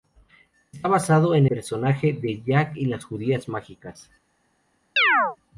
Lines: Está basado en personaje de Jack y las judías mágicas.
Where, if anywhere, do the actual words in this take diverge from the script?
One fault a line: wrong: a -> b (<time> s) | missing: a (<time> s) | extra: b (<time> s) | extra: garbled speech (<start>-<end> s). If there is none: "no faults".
no faults